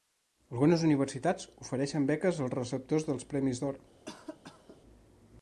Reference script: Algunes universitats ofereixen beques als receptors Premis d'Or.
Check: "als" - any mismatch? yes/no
no